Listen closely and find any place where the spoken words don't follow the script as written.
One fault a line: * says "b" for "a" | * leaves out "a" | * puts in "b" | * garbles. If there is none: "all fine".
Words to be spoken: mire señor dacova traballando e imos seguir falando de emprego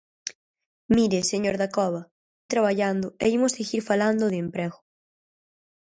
all fine